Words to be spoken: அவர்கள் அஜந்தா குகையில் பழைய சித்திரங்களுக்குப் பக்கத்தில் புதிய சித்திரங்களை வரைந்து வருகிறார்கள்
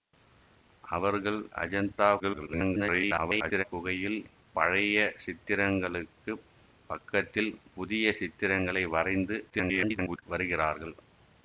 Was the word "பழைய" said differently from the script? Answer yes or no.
no